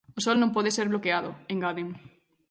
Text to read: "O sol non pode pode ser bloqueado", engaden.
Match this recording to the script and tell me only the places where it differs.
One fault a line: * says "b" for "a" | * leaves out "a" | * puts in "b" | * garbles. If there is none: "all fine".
* leaves out "pode"